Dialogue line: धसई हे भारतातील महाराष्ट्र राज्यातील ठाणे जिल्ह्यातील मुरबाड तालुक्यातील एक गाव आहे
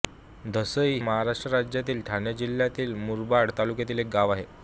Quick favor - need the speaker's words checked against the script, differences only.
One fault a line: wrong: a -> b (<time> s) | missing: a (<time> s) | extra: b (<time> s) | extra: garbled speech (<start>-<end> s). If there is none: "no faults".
missing: हे भारतातील (1.0 s)